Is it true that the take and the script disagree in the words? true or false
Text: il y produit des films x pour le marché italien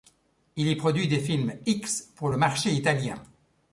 false